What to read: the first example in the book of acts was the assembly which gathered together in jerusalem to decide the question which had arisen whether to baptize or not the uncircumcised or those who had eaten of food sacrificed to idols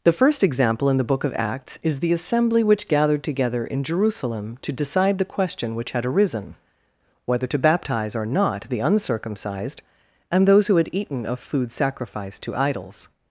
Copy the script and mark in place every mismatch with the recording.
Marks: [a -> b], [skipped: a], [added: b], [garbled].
the first example in the book of acts [was -> is] the assembly which gathered together in jerusalem to decide the question which had arisen whether to baptize or not the uncircumcised [or -> and] those who had eaten of food sacrificed to idols